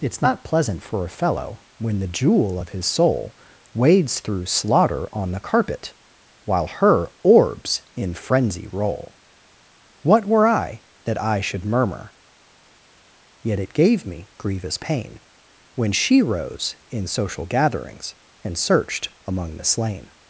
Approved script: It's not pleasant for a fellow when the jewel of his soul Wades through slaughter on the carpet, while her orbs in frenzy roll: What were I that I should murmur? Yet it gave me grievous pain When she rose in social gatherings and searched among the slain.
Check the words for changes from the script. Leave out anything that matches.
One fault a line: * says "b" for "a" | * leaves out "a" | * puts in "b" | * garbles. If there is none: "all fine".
all fine